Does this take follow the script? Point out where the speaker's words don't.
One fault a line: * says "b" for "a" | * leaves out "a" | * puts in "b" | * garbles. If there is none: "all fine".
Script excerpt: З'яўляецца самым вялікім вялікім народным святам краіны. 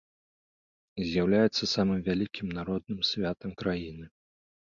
* leaves out "вялікім"